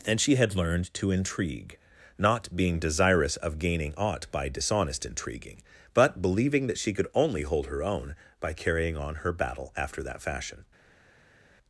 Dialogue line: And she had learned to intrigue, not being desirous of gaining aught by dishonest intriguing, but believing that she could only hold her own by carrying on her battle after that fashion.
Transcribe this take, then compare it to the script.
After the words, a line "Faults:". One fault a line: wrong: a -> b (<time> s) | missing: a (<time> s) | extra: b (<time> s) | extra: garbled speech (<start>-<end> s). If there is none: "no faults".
And she had learned to intrigue, not being desirous of gaining aught by dishonest intriguing, but believing that she could only hold her own by carrying on her battle after that fashion.
Faults:
no faults